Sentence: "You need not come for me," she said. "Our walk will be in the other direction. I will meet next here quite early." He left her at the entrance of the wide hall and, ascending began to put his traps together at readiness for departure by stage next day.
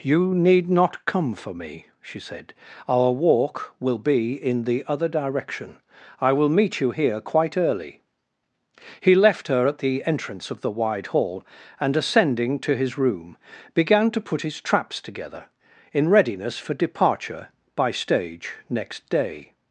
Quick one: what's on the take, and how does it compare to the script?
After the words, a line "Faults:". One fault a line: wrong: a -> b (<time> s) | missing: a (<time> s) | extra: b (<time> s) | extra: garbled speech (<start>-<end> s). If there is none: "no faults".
"You need not come for me," she said. "Our walk will be in the other direction. I will meet you here quite early." He left her at the entrance of the wide hall and, ascending to his room, began to put his traps together in readiness for departure by stage next day.
Faults:
wrong: next -> you (6.8 s)
extra: to his room (12.6 s)
wrong: at -> in (15.9 s)